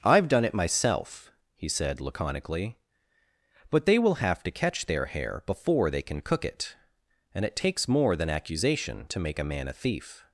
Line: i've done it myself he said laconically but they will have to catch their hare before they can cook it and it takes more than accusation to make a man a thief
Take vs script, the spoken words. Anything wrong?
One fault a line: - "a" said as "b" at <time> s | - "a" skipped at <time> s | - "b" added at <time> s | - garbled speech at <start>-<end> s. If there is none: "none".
none